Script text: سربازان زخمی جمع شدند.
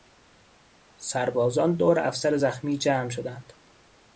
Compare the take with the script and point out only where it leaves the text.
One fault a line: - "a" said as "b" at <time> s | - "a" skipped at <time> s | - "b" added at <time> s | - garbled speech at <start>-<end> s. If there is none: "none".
- "دور افسر" added at 1.8 s